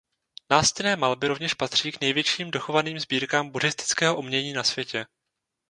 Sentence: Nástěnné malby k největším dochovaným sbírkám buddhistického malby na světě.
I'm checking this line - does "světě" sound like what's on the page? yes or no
yes